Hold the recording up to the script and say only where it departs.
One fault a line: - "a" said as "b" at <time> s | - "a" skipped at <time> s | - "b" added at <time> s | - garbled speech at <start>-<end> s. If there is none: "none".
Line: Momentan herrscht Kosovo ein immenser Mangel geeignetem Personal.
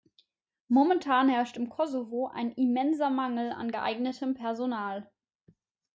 - "im" added at 1.6 s
- "an" added at 3.5 s